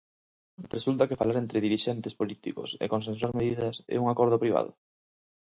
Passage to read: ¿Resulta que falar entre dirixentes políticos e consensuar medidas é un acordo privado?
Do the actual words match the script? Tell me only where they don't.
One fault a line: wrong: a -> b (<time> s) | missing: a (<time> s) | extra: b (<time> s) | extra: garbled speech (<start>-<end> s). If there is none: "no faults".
no faults